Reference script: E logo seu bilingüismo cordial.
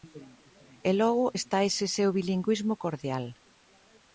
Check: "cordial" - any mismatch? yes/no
no